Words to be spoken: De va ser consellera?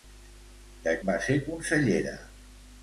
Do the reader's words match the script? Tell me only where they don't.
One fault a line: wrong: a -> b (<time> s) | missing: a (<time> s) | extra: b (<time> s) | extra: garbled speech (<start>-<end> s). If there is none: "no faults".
no faults